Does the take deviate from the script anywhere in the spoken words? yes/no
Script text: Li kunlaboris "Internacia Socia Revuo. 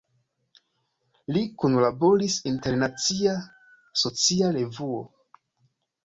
no